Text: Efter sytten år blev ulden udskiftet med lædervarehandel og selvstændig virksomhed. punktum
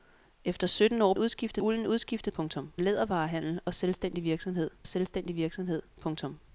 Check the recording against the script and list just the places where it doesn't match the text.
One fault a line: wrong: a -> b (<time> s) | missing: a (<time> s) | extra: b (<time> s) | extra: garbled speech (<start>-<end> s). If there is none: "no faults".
wrong: blev -> udskiftet (1.2 s)
wrong: med -> punktum (2.3 s)
extra: selvstændig virksomhed (4.9 s)